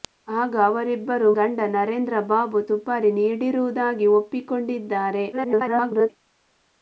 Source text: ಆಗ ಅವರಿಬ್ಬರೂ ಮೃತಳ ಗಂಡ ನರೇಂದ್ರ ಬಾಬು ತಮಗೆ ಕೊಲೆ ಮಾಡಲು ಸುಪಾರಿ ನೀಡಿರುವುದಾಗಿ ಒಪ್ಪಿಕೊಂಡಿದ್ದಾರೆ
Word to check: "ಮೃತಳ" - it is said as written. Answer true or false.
false